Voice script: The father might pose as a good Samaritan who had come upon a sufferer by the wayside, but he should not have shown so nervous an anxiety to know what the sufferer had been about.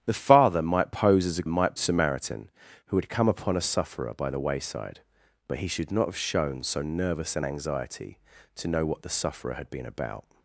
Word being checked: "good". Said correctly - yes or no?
no